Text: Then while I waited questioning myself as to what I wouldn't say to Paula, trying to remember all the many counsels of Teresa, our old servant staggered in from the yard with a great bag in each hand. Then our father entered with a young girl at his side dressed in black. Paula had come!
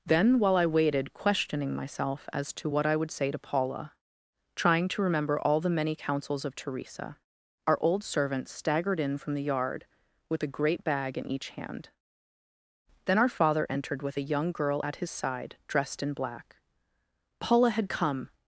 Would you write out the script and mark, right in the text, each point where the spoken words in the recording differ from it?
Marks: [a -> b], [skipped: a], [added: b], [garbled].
Then while I waited questioning myself as to what I [wouldn't -> would] say to Paula, trying to remember all the many counsels of Teresa, our old servant staggered in from the yard with a great bag in each hand. Then our father entered with a young girl at his side dressed in black. Paula had come!